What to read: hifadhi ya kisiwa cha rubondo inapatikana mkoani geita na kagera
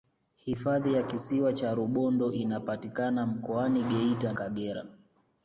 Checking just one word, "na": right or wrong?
wrong